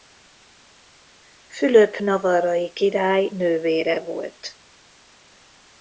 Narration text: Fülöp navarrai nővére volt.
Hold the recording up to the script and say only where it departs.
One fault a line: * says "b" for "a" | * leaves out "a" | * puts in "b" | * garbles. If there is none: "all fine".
* puts in "király"